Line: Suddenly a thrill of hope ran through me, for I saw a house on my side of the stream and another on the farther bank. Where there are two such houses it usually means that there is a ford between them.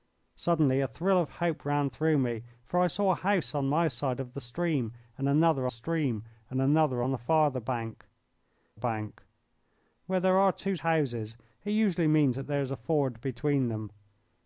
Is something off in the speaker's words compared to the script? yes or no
yes